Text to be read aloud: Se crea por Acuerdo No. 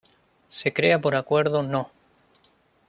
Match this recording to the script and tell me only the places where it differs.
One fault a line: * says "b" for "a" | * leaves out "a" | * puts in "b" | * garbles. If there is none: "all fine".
all fine